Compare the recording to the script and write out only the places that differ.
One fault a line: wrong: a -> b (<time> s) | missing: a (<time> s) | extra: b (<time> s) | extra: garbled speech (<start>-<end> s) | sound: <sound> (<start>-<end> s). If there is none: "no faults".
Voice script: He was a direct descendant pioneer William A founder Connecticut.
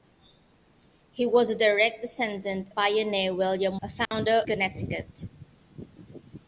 sound: dropout (4.1-4.1 s)